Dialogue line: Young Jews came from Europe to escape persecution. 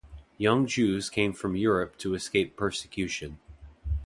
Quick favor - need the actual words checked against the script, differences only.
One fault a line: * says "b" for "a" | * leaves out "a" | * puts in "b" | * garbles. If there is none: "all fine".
all fine